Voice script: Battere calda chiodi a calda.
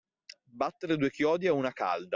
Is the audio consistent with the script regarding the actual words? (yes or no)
no